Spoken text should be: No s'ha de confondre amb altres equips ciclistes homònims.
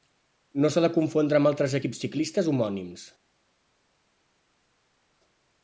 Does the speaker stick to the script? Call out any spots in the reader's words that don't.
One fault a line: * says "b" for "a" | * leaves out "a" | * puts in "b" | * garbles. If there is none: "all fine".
all fine